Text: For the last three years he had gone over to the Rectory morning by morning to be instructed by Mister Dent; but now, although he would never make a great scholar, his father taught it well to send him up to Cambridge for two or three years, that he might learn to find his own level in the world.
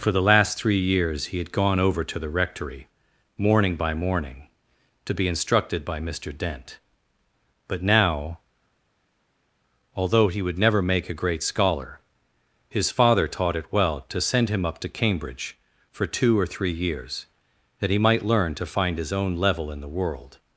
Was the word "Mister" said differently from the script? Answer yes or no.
no